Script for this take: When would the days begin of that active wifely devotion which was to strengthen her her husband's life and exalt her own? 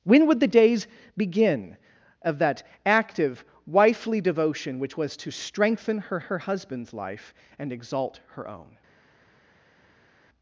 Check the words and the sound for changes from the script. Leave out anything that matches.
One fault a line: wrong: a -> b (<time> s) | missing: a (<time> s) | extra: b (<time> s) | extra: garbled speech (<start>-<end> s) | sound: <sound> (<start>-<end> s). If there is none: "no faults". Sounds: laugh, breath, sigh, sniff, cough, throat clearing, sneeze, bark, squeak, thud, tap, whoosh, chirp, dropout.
no faults